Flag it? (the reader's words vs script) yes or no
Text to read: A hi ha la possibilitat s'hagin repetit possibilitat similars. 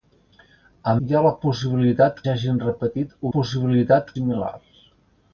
no